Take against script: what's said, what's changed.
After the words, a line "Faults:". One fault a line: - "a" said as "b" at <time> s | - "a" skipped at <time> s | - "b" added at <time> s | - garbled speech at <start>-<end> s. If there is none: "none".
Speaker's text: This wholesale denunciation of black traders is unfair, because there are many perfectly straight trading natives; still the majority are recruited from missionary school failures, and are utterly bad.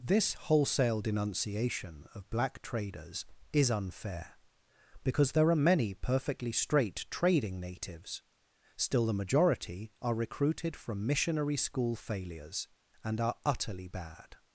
This wholesale denunciation of black traders is unfair, because there are many perfectly straight trading natives; still the majority are recruited from missionary school failures, and are utterly bad.
Faults:
none